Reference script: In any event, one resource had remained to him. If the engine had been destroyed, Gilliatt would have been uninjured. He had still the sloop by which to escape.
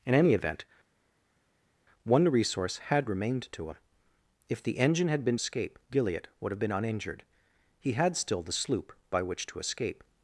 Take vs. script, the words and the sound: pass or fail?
fail